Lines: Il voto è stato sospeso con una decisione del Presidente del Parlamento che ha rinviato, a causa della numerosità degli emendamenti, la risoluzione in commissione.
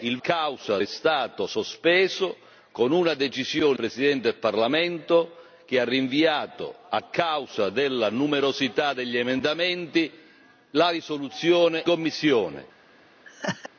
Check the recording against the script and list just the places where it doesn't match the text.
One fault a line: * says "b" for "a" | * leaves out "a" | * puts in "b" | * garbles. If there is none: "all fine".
* says "causa" for "voto"
* leaves out "del"
* leaves out "in"